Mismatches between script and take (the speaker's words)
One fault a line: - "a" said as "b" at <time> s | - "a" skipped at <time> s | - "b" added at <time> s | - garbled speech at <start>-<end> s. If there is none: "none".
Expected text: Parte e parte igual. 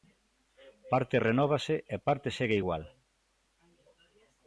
- "renóvase" added at 1.3 s
- "segue" added at 2.4 s